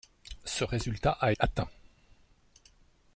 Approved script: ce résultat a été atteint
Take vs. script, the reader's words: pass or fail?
fail